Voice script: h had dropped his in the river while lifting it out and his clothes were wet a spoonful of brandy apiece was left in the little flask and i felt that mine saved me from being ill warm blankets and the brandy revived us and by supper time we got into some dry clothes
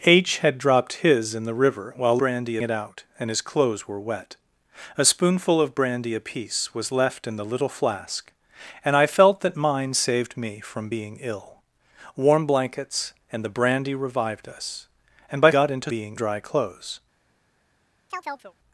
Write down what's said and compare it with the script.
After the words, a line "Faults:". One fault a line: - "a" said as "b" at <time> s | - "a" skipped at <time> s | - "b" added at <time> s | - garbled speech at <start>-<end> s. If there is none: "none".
h had dropped his in the river while brandy it out and his clothes were wet a spoonful of brandy apiece was left in the little flask and i felt that mine saved me from being ill warm blankets and the brandy revived us and by got into being dry clothes
Faults:
- "lifting" said as "brandy" at 2.2 s
- "supper time we" skipped at 15.5 s
- "some" said as "being" at 15.9 s